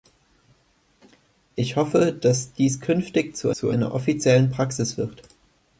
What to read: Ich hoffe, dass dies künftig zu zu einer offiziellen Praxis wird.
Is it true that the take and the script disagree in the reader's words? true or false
false